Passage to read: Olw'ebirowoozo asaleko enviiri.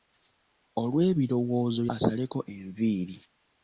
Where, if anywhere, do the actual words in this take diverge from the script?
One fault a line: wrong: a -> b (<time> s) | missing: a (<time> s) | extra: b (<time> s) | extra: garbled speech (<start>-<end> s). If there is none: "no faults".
no faults